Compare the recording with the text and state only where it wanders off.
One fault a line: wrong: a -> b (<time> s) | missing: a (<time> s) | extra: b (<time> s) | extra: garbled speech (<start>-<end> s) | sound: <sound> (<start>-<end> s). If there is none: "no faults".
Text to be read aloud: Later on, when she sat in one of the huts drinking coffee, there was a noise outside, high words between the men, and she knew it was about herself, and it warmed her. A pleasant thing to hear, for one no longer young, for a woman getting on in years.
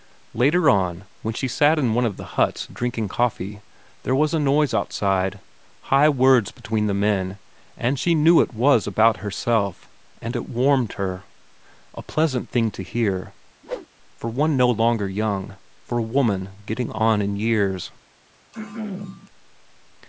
sound: whoosh (13.6-13.9 s)
sound: throat clearing (18.5-19.3 s)